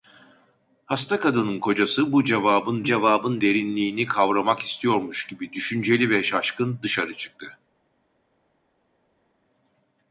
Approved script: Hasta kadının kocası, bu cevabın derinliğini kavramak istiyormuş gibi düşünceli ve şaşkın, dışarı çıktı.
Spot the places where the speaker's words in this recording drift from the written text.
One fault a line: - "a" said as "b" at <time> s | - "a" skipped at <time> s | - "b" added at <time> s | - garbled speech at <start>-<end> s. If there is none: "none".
- "cevabın" added at 2.8 s